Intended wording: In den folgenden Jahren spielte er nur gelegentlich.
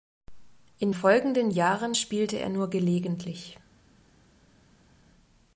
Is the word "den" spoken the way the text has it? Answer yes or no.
no